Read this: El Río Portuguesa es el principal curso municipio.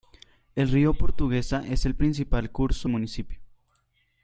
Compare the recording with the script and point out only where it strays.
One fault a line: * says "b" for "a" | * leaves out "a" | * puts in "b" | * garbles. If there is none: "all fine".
all fine